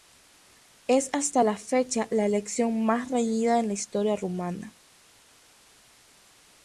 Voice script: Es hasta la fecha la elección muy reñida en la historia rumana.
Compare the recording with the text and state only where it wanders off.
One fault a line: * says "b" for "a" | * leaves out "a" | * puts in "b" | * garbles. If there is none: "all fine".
* says "más" for "muy"